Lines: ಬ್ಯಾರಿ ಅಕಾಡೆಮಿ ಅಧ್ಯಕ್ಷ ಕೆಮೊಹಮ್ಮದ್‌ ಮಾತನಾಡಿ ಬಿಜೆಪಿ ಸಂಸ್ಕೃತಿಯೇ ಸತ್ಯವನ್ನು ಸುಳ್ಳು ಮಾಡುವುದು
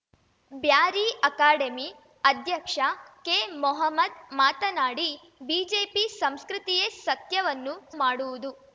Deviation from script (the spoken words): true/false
true